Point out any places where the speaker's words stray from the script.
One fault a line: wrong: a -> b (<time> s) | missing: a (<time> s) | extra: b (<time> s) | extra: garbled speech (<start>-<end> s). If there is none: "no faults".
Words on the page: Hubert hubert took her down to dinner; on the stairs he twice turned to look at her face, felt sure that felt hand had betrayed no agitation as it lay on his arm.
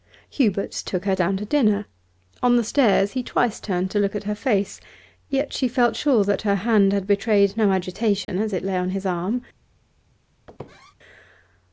missing: hubert (0.7 s)
extra: yet she (5.3 s)
wrong: felt -> her (6.4 s)